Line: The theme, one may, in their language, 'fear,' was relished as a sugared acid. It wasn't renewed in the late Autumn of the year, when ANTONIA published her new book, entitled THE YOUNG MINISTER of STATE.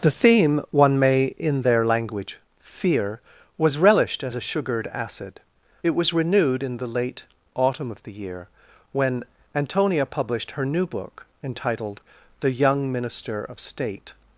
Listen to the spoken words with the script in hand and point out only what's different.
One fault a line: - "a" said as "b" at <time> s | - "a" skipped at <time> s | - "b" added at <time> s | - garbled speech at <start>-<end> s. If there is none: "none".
- "wasn't" said as "was" at 5.9 s